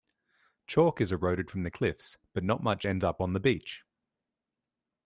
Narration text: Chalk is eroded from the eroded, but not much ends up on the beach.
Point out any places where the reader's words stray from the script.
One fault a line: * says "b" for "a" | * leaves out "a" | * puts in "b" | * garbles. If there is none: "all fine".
* says "cliffs" for "eroded"